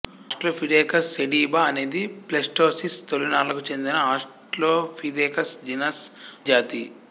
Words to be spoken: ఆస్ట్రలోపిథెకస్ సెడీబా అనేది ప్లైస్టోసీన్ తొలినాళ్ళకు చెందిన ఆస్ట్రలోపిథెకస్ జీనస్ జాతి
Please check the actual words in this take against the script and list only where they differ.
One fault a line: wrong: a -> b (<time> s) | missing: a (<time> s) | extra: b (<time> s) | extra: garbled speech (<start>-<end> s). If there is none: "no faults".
no faults